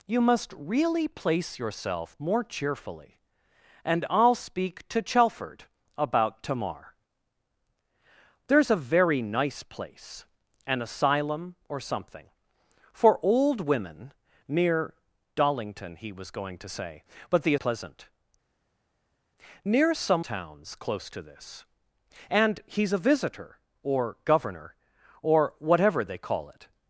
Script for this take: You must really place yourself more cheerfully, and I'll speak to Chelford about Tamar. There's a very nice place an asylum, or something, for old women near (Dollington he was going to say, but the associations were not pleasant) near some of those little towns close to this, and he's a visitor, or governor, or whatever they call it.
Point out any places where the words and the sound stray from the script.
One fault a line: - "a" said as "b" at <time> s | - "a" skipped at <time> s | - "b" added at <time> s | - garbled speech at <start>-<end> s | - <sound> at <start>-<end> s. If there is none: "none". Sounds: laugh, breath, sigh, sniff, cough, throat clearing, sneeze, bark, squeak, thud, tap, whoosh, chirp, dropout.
- "associations were not" skipped at 17.6 s
- "of those little" skipped at 20.2 s